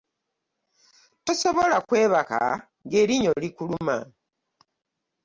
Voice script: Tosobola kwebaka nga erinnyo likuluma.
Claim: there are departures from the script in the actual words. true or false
false